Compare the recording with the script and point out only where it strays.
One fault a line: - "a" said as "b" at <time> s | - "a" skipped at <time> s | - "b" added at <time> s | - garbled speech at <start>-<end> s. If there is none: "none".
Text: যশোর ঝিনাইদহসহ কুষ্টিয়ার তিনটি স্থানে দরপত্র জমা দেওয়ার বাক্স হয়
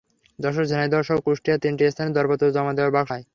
none